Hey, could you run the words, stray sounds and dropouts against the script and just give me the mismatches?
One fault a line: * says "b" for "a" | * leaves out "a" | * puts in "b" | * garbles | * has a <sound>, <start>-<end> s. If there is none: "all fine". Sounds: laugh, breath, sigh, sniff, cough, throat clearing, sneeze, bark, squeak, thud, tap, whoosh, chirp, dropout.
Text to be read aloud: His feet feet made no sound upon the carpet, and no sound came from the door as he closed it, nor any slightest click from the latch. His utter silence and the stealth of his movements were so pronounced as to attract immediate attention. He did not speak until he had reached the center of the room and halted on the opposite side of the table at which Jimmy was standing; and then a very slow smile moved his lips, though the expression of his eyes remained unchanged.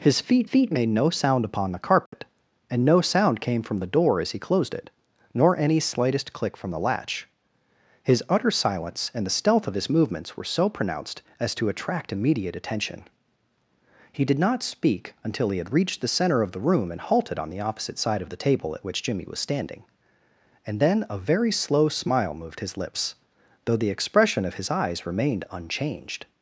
* has a dropout, 2.1-2.1 s